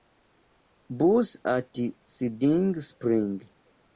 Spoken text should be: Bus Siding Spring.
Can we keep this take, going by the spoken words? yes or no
no